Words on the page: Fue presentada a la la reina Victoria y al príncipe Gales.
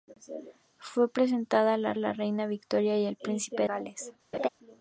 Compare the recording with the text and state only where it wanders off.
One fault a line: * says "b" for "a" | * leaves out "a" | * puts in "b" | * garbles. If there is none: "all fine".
all fine